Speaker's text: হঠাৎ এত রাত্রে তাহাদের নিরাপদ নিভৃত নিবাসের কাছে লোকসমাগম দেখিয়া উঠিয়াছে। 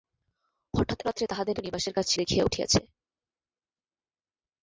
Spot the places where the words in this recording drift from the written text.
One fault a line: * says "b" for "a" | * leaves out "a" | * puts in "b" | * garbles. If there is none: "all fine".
* leaves out "এত"
* leaves out "নিরাপদ নিভৃত"
* leaves out "লোকসমাগম"